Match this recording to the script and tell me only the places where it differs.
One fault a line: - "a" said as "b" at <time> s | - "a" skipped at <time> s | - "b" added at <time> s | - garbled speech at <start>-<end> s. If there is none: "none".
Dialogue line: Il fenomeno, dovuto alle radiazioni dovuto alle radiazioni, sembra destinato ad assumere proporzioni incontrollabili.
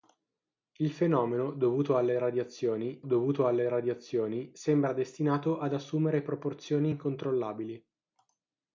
none